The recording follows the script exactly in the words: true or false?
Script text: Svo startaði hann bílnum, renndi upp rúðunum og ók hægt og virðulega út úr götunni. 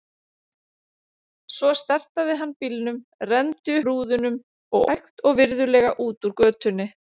false